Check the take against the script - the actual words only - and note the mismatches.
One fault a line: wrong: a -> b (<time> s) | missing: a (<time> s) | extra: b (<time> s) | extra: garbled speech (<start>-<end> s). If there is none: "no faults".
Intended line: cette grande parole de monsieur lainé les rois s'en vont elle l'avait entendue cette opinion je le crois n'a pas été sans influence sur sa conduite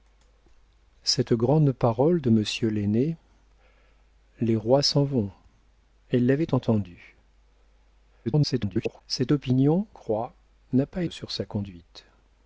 extra: garbled speech (8.2-9.0 s)
missing: je le (9.9 s)
missing: été sans influence (11.0 s)